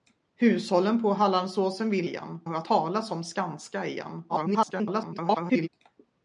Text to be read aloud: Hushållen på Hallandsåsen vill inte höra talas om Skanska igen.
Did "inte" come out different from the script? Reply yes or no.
yes